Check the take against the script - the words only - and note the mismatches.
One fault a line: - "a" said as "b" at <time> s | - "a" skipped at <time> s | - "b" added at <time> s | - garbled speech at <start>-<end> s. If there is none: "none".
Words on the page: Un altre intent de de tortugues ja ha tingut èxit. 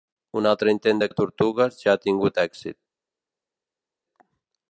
none